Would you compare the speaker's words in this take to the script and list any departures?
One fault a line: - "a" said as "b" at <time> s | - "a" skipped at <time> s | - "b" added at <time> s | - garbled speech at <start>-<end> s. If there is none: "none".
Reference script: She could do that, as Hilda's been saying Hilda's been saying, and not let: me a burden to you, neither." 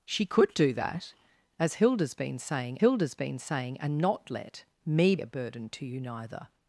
none